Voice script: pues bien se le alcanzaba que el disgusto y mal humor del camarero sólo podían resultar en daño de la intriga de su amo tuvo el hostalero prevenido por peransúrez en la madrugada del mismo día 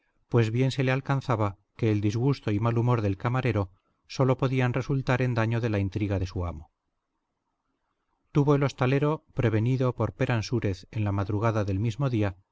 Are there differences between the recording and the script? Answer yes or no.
no